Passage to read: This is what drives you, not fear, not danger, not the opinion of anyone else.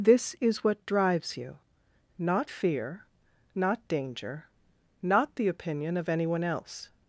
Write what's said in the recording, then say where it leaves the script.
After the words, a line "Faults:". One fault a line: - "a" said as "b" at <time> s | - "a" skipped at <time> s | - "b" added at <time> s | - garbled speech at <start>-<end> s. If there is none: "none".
This is what drives you, not fear, not danger, not the opinion of anyone else.
Faults:
none